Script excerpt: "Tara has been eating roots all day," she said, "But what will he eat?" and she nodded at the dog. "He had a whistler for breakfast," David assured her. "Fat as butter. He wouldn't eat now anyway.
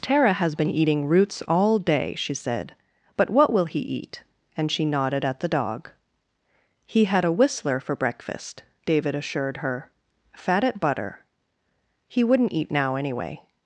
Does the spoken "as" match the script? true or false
false